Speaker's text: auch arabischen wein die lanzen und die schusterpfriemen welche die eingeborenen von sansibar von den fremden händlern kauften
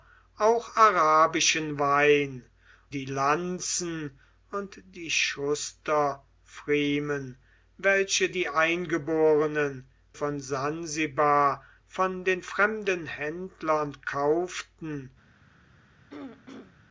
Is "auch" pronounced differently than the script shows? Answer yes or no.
no